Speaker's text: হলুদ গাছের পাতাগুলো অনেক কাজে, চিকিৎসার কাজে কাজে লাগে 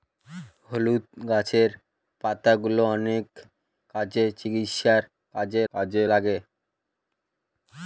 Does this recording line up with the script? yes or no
yes